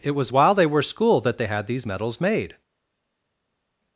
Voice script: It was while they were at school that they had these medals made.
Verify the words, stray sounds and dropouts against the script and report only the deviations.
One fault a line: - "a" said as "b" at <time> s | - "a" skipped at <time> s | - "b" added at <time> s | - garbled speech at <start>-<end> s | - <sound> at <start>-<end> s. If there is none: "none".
- "at" skipped at 0.8 s